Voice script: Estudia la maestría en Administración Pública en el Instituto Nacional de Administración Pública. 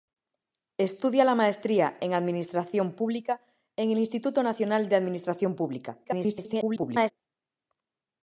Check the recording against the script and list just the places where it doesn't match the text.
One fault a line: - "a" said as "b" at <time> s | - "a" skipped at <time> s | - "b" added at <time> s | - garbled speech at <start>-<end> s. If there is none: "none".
- garbled speech at 6.0-7.1 s